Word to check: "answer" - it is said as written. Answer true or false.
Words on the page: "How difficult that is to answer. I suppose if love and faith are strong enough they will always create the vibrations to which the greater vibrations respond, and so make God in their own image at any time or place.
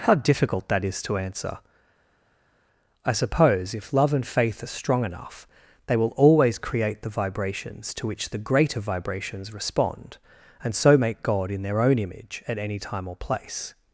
true